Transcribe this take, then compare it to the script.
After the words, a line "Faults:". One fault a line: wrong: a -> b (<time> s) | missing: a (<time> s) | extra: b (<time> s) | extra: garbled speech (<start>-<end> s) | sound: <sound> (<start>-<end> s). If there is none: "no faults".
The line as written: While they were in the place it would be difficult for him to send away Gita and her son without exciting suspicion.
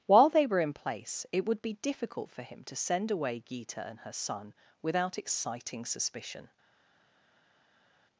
While they were in place it would be difficult for him to send away Gita and her son without exciting suspicion.
Faults:
missing: the (0.7 s)